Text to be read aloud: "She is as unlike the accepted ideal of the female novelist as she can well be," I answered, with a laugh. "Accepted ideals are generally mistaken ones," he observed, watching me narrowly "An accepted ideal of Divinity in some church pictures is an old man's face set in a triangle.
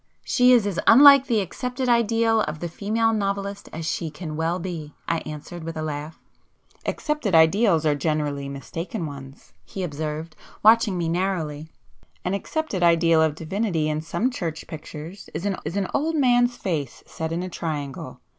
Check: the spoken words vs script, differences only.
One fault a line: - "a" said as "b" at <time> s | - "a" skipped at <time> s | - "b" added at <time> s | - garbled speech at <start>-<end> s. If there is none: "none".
- "is an" added at 15.6 s